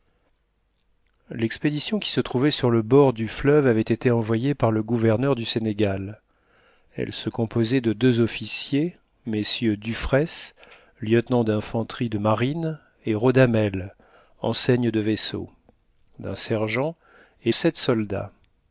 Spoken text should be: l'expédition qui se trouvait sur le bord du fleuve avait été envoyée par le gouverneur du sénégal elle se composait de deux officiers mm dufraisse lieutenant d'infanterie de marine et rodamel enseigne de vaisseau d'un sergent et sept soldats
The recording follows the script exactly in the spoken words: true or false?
true